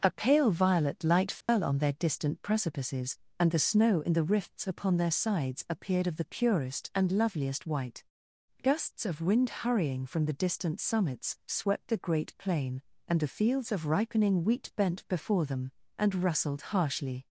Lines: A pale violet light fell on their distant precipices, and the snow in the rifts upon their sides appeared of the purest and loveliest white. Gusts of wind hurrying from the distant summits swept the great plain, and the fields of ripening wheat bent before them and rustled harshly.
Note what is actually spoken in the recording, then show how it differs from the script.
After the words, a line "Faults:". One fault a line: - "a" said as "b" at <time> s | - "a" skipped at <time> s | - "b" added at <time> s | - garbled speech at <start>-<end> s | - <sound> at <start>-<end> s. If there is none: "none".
A pale violet light fell on their distant precipices, and the snow in the rifts upon their sides appeared of the purest and loveliest white. Gusts of wind hurrying from the distant summits swept the great plain, and the fields of ripening wheat bent before them and rustled harshly.
Faults:
- dropout at 1.4-1.5 s